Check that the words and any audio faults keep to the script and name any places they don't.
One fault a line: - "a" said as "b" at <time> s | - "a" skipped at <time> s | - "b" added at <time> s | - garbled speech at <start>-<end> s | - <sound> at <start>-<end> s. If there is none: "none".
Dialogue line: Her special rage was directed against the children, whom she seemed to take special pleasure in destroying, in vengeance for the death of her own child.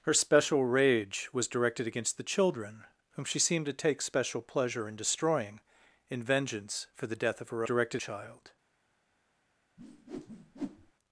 - "own" said as "directed" at 7.6 s
- whoosh at 9.8-10.9 s